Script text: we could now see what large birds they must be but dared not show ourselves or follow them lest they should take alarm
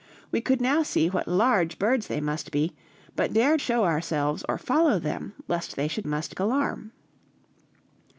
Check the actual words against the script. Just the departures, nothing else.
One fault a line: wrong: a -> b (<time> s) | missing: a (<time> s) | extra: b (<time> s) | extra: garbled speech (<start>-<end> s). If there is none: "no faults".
missing: not (3.6 s)
wrong: take -> must (6.0 s)